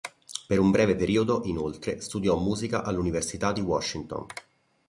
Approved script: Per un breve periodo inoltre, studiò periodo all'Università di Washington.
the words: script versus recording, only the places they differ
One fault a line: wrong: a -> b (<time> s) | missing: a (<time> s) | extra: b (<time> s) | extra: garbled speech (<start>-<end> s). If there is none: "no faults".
wrong: periodo -> musica (2.4 s)